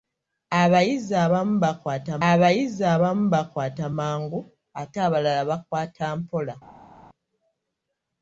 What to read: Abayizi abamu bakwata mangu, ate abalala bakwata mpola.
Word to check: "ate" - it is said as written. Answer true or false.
true